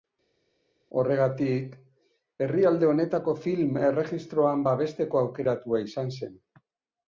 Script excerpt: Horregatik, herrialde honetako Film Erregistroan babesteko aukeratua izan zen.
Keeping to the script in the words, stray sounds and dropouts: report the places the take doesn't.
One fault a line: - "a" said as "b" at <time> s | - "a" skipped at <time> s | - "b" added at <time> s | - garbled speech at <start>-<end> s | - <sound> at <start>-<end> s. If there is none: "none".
none